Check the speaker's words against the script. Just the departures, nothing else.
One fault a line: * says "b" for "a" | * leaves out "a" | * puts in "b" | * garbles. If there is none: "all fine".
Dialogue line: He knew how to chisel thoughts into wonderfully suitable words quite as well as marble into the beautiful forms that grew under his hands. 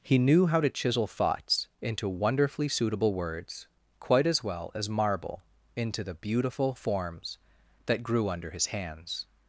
all fine